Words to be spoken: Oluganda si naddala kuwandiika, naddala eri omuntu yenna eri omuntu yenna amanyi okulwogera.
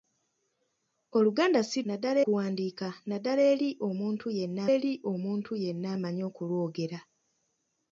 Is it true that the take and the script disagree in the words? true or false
false